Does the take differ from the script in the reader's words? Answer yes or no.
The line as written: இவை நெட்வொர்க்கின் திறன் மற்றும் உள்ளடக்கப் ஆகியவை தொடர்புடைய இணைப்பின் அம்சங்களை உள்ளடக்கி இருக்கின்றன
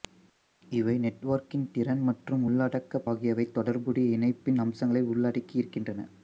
no